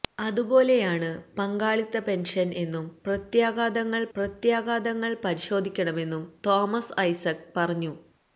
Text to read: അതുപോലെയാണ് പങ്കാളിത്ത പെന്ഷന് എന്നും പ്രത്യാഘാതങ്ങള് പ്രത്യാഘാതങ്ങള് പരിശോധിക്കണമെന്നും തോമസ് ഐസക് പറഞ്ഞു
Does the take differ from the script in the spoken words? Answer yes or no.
no